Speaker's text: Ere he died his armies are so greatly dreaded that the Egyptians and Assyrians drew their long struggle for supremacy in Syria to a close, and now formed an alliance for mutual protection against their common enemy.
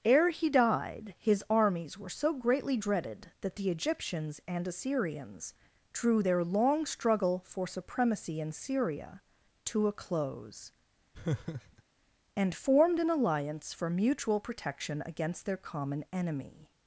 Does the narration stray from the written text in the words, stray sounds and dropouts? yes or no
yes